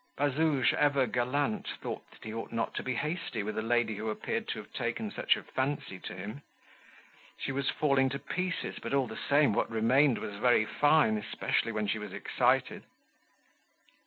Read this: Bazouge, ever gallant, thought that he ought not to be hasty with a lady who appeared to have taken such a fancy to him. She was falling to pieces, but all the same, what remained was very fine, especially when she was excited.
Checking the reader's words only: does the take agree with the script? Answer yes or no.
yes